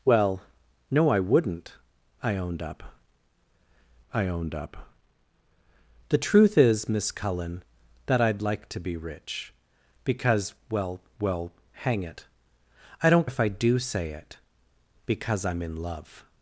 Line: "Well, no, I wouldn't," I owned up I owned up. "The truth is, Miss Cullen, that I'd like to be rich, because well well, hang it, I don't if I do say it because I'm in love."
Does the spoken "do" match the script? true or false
true